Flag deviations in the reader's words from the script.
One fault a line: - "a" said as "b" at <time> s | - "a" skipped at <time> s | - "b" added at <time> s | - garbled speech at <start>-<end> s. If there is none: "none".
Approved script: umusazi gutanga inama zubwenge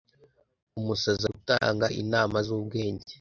none